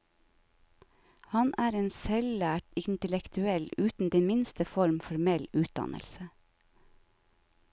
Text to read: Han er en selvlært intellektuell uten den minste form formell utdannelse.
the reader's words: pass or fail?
pass